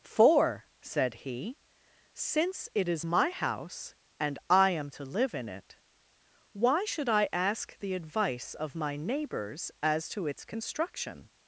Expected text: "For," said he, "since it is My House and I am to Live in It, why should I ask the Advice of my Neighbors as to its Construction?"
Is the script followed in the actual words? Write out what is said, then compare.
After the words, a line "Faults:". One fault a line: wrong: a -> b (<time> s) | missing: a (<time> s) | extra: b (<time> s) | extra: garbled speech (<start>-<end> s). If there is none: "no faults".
"For," said he, "since it is My House and I am to Live in It, why should I ask the Advice of my Neighbors as to its Construction?"
Faults:
no faults